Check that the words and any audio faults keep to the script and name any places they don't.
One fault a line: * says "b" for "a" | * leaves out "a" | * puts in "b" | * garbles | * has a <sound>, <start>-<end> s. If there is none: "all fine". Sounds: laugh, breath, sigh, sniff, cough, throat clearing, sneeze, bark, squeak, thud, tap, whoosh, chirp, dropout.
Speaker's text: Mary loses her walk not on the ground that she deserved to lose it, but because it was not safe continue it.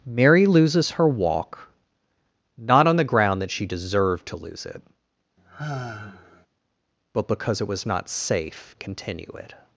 * has a sigh, 5.4-6.5 s